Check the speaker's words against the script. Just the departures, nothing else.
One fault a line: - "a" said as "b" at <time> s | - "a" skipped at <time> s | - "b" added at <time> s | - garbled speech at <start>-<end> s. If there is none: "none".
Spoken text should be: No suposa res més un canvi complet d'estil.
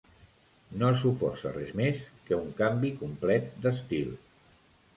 - "que" added at 2.3 s